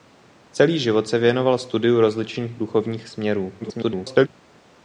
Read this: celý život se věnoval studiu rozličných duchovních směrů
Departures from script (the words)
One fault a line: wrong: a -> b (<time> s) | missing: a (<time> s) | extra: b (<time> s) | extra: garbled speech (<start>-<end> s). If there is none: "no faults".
extra: garbled speech (3.6-4.3 s)